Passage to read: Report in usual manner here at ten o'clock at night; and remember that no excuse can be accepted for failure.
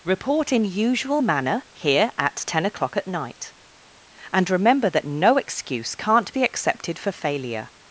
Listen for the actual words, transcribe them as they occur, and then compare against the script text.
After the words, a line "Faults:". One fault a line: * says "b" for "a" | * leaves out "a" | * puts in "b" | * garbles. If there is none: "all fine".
Report in usual manner here at ten o'clock at night; and remember that no excuse can't be accepted for failure.
Faults:
* says "can't" for "can"